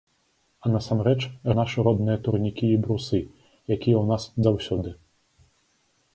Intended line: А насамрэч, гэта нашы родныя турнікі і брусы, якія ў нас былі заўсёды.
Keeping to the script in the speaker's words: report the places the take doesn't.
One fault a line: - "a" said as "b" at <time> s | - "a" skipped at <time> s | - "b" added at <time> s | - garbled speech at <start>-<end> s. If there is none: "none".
- "гэта" skipped at 1.2 s
- "былі" skipped at 4.2 s